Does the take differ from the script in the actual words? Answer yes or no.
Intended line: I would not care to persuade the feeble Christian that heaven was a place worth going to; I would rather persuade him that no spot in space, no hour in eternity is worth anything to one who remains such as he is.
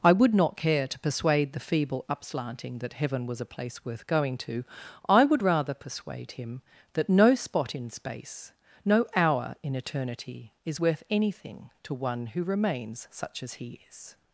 yes